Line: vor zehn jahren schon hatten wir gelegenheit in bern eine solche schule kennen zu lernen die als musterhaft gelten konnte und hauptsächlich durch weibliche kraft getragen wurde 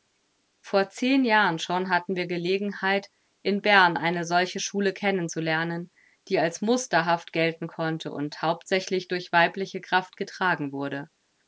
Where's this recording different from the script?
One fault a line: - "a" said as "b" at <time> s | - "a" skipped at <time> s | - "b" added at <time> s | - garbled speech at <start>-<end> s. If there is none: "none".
none